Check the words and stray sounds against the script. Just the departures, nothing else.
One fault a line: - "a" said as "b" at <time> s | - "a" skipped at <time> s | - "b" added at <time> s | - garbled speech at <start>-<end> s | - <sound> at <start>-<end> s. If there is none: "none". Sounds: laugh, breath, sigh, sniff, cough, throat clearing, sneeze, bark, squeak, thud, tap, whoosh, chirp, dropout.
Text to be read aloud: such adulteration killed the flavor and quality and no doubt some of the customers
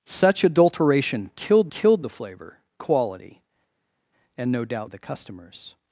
- "killed" added at 1.7 s
- "and" skipped at 2.6 s
- "some" skipped at 4.9 s